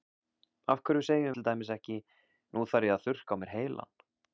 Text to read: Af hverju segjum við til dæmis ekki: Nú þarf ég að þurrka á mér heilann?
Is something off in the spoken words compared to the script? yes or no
yes